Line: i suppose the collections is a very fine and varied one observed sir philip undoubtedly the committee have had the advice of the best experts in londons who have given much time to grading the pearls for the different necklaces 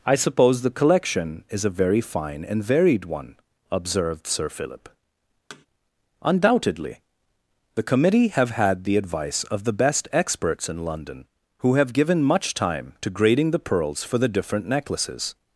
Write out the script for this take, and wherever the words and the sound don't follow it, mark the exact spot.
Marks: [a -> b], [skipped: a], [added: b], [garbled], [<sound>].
i suppose the [collections -> collection] is a very fine and varied one observed sir philip [thud] undoubtedly the committee have had the advice of the best experts in [londons -> london] who have given much time to grading the pearls for the different necklaces